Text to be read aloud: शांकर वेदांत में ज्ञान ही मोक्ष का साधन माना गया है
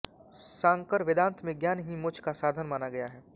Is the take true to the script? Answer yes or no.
yes